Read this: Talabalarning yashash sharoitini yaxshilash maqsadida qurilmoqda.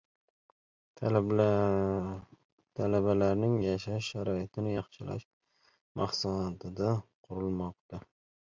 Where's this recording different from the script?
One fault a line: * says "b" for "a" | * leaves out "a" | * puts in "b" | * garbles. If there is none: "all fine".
all fine